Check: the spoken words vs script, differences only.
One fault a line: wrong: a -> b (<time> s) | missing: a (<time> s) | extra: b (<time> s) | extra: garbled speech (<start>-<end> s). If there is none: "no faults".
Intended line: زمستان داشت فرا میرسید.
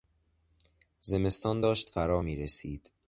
no faults